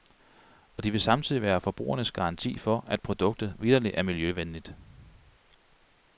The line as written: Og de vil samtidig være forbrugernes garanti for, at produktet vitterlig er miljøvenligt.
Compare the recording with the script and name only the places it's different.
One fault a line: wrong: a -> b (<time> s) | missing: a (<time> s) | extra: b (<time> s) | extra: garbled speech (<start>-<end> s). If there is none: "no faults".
no faults